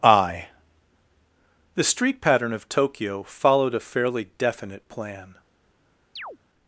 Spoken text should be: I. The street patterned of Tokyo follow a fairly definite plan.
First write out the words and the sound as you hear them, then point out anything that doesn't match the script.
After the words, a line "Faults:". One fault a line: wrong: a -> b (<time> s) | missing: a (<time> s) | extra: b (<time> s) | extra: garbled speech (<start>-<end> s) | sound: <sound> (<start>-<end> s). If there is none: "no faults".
I. The street pattern of Tokyo followed a fairly definite plan.
Faults:
wrong: patterned -> pattern (2.2 s)
wrong: follow -> followed (3.2 s)
sound: chirp (6.2-6.4 s)